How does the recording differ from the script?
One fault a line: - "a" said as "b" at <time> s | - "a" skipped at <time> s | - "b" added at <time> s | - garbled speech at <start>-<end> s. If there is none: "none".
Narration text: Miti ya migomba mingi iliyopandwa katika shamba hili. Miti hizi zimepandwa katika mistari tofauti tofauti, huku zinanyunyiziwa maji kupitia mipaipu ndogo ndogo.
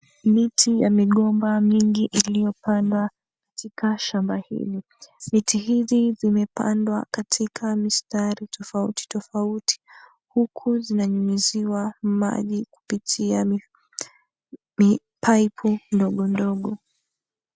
none